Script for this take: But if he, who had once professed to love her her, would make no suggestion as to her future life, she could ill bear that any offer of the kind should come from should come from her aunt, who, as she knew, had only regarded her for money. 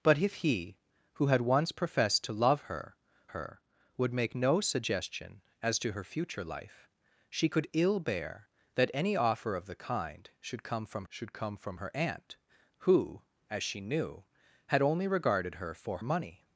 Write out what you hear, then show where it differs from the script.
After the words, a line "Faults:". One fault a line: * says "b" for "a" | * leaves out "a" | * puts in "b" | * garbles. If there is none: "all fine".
But if he, who had once professed to love her her, would make no suggestion as to her future life, she could ill bear that any offer of the kind should come from should come from her aunt, who, as she knew, had only regarded her for money.
Faults:
all fine